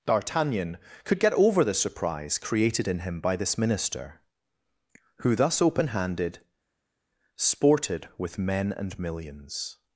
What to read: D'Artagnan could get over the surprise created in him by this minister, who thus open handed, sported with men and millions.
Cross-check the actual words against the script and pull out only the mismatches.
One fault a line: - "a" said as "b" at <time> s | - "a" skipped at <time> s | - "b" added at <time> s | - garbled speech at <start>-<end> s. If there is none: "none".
none